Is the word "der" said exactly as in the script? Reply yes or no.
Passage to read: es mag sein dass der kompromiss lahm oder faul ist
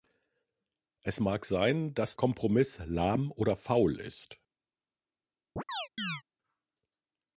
no